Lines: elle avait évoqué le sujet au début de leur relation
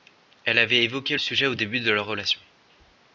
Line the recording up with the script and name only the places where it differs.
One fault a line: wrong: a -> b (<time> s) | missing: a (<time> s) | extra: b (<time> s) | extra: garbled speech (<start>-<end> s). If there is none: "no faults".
missing: le (1.1 s)